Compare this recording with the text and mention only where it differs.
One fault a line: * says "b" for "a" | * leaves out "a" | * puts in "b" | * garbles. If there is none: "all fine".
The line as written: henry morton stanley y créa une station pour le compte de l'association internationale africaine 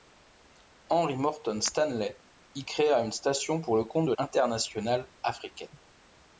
* leaves out "l'association"